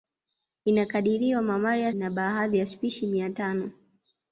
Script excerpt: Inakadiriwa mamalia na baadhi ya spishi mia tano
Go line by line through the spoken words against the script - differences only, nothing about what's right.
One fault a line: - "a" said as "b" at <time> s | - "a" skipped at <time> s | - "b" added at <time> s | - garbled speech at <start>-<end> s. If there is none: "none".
none